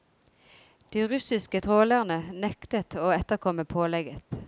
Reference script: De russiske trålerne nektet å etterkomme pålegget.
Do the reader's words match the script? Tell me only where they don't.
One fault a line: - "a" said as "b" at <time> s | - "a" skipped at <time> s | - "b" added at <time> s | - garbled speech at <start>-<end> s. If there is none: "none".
none